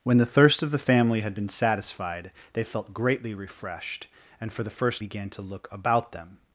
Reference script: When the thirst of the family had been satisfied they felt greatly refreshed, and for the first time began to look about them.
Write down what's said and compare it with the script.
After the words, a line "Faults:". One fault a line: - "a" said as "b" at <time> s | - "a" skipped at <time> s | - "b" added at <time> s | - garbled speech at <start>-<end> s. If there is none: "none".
When the thirst of the family had been satisfied they felt greatly refreshed, and for the first began to look about them.
Faults:
- "time" skipped at 5.0 s